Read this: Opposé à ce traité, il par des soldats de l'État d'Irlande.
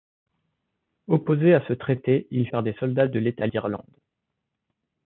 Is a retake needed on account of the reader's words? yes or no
no